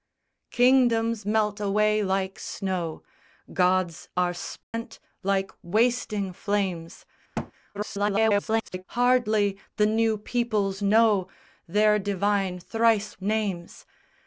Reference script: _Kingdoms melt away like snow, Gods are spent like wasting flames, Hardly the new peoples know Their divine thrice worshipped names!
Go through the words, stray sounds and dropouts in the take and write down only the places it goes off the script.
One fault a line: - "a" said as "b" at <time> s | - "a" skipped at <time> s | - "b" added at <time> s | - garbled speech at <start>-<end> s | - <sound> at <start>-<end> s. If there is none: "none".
- dropout at 4.6-4.7 s
- thud at 7.3-7.5 s
- garbled speech at 7.7-8.8 s
- "worshipped" skipped at 13.2 s